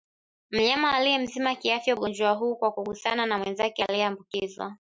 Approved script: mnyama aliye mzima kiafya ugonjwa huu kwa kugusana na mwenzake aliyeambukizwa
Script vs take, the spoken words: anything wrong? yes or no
no